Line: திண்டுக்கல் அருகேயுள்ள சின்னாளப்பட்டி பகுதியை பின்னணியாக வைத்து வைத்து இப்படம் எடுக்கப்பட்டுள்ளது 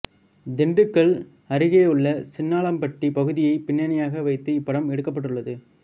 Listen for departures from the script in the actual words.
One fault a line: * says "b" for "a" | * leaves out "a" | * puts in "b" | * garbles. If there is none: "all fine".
* leaves out "வைத்து"